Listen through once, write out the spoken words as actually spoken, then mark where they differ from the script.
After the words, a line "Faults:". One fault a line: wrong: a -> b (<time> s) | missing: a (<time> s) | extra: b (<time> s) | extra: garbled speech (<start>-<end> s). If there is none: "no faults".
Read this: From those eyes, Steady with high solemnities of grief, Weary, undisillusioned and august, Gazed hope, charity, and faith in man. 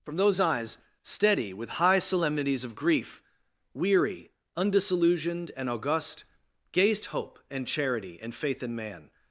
From those eyes, Steady with high solemnities of grief, Weary, undisillusioned and august, Gazed hope, and charity, and faith in man.
Faults:
extra: and (7.5 s)